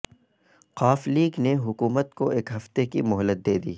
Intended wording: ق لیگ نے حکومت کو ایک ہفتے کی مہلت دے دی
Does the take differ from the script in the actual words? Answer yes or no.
no